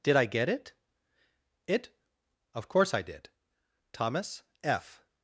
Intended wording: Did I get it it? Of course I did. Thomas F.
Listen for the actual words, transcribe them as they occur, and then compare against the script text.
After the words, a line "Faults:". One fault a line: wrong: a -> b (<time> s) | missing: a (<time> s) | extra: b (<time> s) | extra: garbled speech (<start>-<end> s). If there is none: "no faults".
Did I get it it? Of course I did. Thomas F.
Faults:
no faults